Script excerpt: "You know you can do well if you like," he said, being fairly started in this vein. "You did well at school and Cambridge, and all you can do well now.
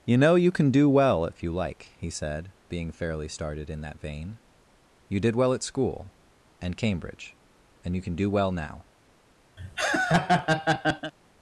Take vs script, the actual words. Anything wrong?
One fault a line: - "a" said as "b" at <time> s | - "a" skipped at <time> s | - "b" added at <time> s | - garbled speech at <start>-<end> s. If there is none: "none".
- "this" said as "that" at 3.8 s
- "all" skipped at 8.0 s